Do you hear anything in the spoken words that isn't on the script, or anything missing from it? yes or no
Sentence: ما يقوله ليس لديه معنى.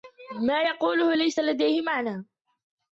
no